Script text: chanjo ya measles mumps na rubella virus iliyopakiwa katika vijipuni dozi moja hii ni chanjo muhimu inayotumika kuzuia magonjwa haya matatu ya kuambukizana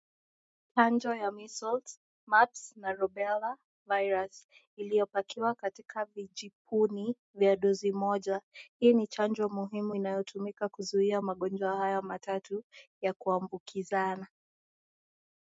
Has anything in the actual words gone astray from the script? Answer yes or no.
yes